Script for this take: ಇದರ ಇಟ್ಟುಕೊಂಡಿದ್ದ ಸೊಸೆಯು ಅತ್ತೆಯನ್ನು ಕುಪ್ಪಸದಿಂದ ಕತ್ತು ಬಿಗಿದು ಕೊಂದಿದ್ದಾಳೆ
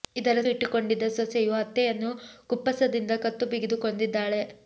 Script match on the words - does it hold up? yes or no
yes